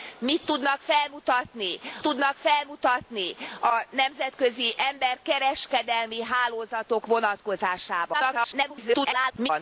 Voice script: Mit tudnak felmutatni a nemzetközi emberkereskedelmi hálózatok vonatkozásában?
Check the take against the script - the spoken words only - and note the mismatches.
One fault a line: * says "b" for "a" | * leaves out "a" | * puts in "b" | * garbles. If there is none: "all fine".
* puts in "tudnak felmutatni"
* garbles